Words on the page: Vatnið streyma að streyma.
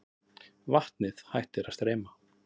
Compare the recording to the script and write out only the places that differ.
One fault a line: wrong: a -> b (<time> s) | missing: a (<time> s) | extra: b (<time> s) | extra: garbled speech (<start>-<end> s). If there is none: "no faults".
wrong: streyma -> hættir (1.3 s)